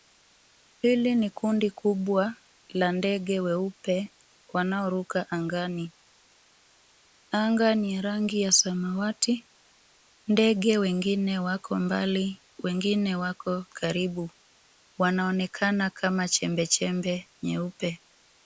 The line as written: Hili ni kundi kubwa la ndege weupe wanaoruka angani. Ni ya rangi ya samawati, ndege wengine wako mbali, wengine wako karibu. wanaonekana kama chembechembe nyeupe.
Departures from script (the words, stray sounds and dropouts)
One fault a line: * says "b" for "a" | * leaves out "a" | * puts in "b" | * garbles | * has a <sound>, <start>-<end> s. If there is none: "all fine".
* puts in "Anga"